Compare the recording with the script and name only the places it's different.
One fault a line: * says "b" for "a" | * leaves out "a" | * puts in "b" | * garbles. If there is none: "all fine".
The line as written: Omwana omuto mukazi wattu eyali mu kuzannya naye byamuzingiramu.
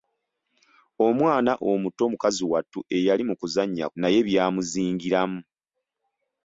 all fine